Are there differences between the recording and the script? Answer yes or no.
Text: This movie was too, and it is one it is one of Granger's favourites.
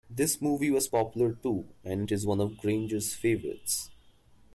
yes